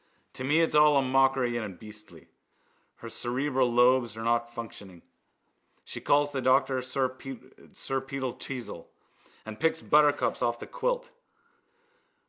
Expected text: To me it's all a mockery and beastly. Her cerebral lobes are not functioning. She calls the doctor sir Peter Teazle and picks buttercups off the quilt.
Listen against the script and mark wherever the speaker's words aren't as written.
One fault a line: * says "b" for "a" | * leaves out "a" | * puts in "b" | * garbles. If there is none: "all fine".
all fine